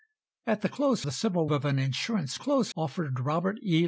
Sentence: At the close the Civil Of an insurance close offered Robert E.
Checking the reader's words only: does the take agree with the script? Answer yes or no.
yes